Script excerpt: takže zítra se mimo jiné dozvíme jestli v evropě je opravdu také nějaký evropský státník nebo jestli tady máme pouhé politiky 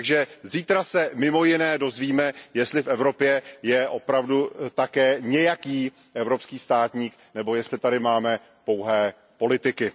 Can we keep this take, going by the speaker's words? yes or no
yes